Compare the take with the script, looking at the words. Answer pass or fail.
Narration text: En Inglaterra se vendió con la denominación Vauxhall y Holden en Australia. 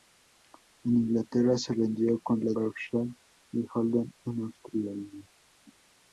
fail